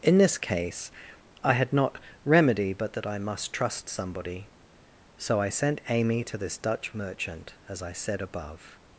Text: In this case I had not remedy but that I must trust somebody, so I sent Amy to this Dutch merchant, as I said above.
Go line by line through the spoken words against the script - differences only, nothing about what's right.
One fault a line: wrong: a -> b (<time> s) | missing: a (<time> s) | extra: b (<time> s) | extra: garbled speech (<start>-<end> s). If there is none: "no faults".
no faults